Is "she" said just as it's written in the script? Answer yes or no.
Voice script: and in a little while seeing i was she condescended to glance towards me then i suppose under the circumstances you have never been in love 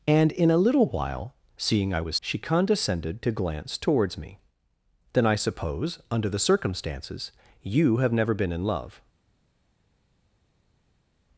yes